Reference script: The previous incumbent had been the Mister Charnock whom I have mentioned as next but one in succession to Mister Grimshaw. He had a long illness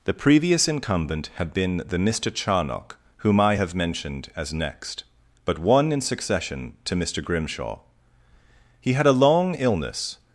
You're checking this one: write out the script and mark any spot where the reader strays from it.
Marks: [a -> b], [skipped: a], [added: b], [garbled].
The previous incumbent had been the Mister Charnock whom I have mentioned as next but one in succession to Mister Grimshaw. He had a long illness